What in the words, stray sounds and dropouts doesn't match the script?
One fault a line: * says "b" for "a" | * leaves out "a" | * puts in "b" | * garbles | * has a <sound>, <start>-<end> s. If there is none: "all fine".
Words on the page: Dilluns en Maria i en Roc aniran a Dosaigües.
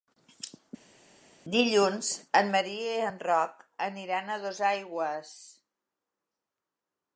all fine